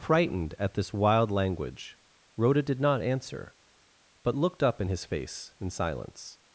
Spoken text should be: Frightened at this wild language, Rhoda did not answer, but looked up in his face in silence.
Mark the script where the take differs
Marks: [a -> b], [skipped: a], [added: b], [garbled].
Frightened at this wild language, Rhoda did not answer, but looked up in his face in silence.